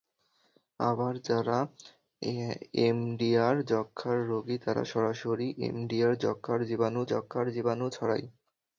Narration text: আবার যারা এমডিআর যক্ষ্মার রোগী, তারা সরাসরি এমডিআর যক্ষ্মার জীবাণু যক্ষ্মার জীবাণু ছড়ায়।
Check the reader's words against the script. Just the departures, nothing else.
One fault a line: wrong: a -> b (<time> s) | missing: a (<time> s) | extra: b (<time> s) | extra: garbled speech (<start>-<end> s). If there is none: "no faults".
no faults